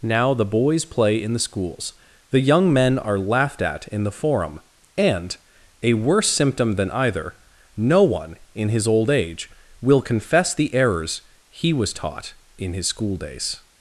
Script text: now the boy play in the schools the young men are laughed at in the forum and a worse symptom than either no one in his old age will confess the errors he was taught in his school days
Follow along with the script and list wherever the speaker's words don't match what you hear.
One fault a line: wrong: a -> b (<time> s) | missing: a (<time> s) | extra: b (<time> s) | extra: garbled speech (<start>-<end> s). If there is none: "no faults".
wrong: boy -> boys (0.5 s)